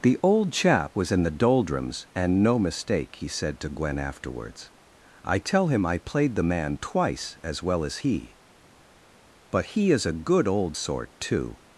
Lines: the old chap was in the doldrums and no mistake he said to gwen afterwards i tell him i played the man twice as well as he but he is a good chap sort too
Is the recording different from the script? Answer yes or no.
yes